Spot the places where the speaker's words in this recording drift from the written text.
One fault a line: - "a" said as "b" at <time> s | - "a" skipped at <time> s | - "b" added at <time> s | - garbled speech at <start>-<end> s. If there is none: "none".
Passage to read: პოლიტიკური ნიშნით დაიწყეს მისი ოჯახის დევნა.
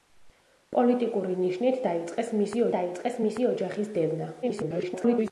- "დაიწყეს მისი" added at 2.8 s
- garbled speech at 4.4-5.3 s